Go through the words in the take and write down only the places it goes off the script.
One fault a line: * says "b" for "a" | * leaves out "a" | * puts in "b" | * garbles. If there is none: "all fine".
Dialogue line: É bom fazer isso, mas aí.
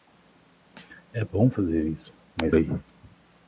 all fine